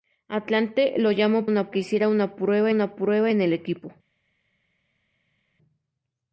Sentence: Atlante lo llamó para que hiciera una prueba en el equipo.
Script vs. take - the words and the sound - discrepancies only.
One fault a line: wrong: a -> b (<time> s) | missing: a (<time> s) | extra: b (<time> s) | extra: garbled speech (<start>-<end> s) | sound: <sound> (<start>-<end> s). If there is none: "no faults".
wrong: para -> una (1.5 s)
extra: una prueba (2.7 s)